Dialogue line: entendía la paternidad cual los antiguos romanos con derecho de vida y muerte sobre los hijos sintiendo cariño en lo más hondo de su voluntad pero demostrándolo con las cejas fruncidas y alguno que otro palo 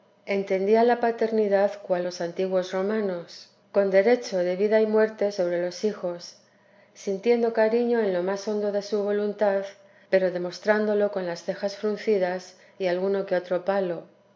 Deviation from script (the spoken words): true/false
false